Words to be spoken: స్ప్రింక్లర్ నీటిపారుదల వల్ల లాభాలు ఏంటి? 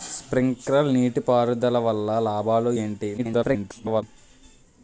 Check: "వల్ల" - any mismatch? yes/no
no